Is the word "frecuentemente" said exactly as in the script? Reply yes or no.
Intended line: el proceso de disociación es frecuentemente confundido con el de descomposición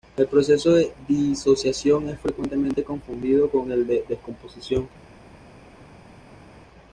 yes